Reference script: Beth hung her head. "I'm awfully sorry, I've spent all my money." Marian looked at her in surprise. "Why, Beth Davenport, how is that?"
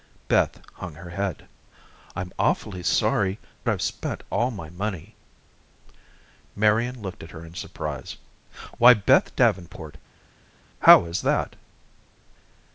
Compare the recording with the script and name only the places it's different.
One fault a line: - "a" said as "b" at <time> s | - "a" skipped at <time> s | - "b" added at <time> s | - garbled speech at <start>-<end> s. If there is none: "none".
none